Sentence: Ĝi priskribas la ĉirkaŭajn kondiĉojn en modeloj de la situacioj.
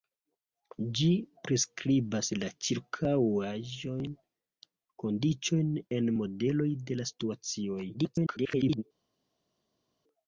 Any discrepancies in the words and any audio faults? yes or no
yes